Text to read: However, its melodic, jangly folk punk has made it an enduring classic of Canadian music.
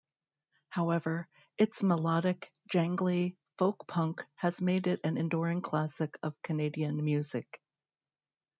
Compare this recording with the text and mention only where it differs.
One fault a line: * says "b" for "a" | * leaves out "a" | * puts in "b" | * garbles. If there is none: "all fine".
all fine